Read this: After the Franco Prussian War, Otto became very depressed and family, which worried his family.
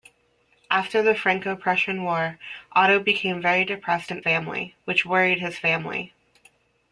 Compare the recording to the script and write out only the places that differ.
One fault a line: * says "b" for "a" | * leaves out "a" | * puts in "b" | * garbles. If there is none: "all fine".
all fine